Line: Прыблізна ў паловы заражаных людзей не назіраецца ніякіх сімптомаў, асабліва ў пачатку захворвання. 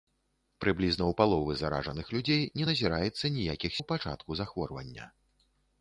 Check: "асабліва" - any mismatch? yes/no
yes